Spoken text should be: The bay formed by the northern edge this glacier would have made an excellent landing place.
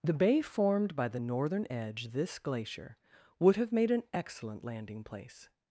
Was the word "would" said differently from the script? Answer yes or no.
no